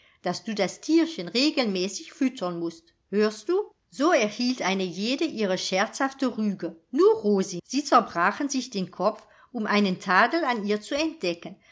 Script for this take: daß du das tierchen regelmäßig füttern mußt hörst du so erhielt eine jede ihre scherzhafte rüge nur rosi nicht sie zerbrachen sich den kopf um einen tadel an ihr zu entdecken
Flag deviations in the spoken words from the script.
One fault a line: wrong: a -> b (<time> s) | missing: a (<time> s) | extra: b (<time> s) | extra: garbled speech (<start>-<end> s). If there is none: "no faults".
missing: nicht (7.6 s)